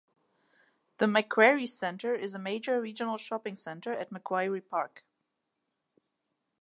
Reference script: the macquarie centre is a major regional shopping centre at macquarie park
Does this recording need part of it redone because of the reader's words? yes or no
no